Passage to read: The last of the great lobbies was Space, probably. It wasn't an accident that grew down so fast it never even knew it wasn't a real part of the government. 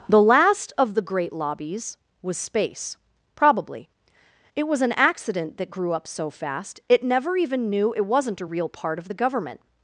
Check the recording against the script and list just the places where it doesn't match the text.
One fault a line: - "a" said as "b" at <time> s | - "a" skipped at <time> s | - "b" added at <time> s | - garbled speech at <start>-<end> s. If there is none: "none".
- "wasn't" said as "was" at 4.7 s
- "down" said as "up" at 5.9 s